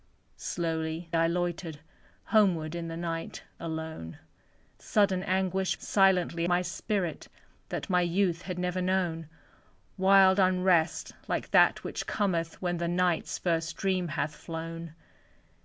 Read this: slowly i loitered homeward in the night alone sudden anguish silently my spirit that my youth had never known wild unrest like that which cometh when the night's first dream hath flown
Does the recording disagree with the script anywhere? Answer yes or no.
no